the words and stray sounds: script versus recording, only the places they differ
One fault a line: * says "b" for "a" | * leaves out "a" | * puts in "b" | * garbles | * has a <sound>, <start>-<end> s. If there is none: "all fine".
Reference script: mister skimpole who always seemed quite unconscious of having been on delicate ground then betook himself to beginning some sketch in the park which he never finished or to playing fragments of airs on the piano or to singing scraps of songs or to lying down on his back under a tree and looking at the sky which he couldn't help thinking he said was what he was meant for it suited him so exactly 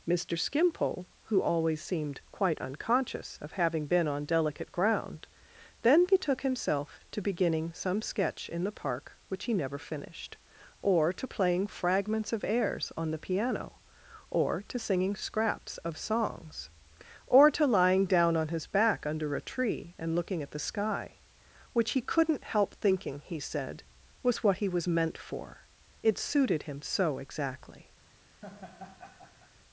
* has a laugh, 28.4-29.5 s